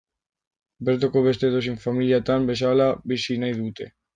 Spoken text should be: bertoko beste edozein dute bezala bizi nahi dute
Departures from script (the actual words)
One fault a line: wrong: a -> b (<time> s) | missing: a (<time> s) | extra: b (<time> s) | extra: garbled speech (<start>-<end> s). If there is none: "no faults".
wrong: dute -> familiatan (1.9 s)